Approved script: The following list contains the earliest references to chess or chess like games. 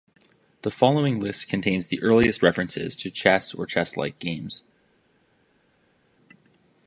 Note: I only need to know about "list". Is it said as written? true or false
true